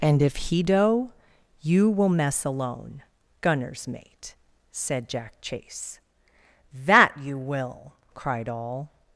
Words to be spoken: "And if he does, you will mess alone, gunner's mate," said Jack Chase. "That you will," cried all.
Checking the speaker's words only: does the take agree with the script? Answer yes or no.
no